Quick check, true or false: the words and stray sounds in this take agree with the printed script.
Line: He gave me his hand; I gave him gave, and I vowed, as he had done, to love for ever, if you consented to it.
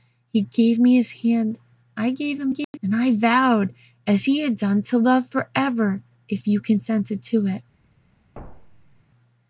false